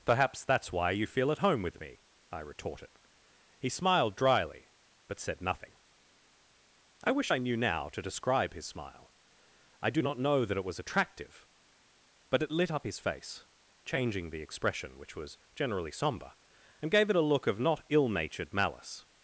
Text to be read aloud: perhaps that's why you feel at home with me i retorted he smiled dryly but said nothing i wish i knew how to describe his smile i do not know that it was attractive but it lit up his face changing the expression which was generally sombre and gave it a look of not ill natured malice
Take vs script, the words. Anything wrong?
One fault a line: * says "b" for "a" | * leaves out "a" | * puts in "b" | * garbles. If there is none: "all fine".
* says "now" for "how"